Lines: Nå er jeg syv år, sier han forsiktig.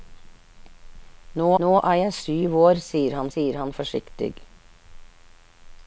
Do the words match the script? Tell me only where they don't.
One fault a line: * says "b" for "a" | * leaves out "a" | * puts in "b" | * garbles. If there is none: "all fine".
* puts in "nå"
* puts in "sier han"